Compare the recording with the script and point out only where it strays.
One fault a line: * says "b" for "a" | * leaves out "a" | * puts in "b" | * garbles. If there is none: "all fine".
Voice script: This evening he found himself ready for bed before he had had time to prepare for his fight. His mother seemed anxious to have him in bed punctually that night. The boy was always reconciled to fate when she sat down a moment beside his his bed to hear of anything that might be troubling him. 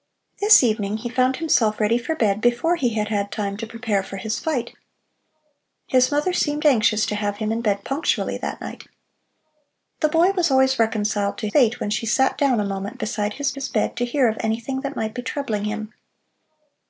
all fine